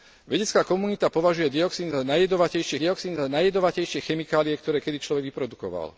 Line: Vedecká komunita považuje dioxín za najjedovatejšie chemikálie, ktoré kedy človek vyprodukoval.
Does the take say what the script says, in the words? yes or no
no